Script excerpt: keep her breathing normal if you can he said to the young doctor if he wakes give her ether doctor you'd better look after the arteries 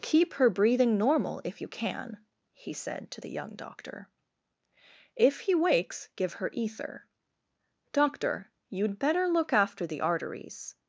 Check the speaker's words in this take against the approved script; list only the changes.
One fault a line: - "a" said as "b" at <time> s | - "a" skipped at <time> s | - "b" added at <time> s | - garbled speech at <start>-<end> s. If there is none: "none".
none